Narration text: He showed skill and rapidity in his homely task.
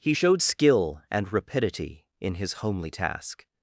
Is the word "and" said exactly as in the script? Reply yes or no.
yes